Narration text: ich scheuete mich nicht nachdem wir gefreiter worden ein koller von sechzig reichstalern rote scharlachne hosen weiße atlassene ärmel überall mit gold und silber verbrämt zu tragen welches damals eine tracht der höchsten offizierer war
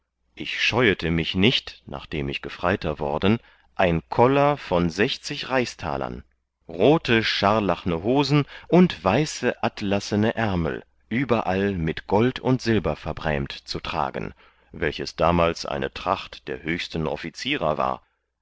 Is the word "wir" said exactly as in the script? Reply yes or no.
no